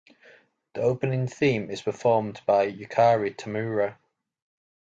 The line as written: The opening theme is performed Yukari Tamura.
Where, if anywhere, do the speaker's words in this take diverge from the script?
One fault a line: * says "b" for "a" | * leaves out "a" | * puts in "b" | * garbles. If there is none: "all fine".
* puts in "by"